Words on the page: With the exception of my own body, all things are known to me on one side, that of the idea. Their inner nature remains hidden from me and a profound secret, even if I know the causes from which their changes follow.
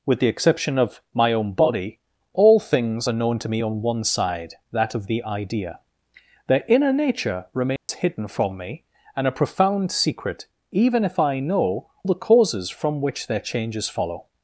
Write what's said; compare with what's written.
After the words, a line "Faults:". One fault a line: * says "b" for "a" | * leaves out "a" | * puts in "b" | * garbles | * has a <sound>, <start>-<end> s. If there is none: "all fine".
With the exception of my own body, all things are known to me on one side, that of the idea. Their inner nature remains hidden from me and a profound secret, even if I know the causes from which their changes follow.
Faults:
* has a dropout, 7.8-7.9 s